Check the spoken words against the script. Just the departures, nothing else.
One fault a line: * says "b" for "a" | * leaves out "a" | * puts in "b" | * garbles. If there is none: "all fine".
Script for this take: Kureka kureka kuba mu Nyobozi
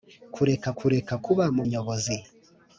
all fine